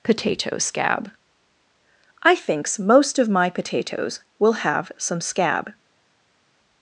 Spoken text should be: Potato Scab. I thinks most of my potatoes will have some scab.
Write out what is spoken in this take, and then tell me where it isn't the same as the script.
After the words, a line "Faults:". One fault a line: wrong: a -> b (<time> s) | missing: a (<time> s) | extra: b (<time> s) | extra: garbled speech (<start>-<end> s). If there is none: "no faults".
Potato Scab. I thinks most of my potatoes will have some scab.
Faults:
no faults